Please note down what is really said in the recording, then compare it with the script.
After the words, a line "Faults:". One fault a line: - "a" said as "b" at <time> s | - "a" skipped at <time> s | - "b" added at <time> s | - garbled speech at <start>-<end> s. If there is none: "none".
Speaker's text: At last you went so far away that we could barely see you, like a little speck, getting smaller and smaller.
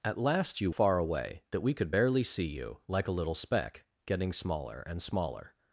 At last you far away that we could barely see you, like a little speck, getting smaller and smaller.
Faults:
- "went so" skipped at 0.7 s